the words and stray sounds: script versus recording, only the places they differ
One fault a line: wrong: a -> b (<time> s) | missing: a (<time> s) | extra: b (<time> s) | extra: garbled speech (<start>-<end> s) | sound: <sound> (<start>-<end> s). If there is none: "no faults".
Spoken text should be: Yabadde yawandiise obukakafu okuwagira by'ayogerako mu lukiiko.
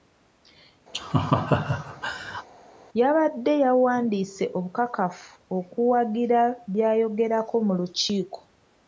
sound: laugh (0.9-2.5 s)